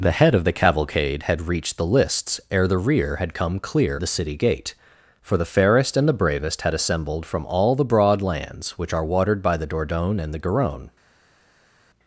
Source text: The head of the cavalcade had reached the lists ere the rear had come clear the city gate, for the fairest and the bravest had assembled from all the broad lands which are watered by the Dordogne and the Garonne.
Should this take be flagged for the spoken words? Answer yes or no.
no